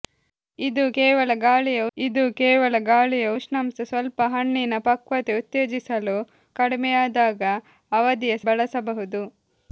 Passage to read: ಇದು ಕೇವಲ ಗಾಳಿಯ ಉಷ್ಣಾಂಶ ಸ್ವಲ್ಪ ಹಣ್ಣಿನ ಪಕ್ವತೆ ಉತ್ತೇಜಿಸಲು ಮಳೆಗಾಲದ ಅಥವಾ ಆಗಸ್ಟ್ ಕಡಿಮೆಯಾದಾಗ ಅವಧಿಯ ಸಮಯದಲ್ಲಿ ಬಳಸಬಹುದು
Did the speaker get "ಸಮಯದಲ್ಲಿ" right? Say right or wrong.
wrong